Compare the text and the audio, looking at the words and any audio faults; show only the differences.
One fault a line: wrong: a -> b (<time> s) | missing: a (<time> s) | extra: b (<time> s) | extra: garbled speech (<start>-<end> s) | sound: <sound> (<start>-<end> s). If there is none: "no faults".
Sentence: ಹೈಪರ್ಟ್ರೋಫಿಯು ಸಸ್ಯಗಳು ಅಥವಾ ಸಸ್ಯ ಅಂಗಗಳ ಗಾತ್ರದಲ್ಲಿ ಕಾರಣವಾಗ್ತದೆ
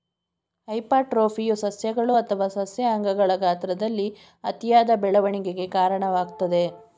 extra: ಅತಿಯಾದ ಬೆಳವಣಿಗೆಗೆ (4.4 s)